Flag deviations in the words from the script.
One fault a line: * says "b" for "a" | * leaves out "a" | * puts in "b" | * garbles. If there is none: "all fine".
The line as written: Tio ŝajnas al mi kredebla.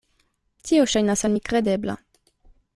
all fine